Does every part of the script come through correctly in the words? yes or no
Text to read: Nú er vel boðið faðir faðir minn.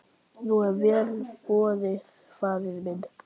no